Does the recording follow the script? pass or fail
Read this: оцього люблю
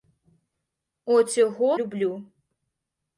pass